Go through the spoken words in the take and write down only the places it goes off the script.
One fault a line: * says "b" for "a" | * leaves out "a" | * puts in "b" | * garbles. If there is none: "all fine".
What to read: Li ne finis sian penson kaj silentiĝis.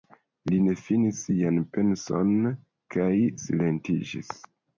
all fine